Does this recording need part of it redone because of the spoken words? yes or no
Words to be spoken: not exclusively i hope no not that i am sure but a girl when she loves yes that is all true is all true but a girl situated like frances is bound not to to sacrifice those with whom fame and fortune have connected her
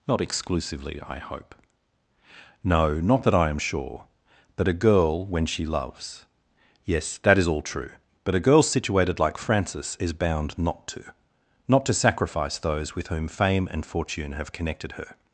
yes